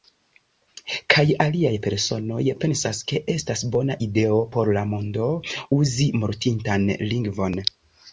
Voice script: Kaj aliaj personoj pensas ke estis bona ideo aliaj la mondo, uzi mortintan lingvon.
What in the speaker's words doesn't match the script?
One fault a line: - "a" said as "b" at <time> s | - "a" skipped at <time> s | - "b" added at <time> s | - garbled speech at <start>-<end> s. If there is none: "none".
- "estis" said as "estas" at 3.3 s
- "aliaj" said as "por" at 4.6 s